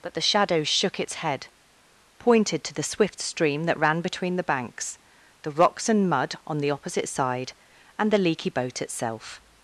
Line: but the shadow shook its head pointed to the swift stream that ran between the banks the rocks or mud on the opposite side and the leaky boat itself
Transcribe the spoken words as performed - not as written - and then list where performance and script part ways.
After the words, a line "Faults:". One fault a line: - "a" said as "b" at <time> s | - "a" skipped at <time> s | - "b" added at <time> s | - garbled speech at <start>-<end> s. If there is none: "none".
but the shadow shook its head pointed to the swift stream that ran between the banks the rocks and mud on the opposite side and the leaky boat itself
Faults:
- "or" said as "and" at 5.9 s